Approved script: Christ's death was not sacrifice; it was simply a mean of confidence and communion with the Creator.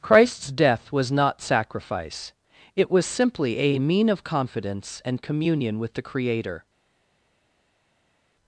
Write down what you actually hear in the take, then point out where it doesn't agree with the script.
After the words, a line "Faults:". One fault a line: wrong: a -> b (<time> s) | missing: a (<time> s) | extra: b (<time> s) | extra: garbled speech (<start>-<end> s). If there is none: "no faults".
Christ's death was not sacrifice; it was simply a mean of confidence and communion with the Creator.
Faults:
no faults